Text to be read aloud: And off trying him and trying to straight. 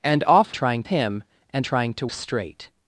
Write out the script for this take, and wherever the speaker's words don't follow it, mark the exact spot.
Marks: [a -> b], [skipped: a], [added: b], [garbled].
And off trying him and trying to straight.